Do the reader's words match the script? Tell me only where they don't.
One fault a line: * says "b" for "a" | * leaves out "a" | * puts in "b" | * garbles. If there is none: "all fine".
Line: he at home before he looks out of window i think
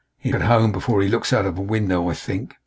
all fine